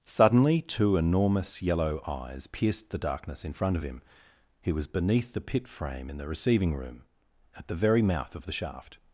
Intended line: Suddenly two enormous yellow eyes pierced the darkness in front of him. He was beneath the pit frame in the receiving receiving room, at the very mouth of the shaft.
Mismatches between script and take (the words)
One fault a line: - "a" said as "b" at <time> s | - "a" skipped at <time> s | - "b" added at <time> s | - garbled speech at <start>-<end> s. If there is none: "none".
- "receiving" skipped at 6.7 s